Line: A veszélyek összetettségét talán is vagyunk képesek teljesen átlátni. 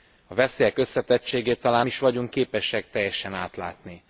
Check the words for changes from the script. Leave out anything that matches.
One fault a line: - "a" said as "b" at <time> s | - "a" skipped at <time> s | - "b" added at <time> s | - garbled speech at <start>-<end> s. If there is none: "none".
none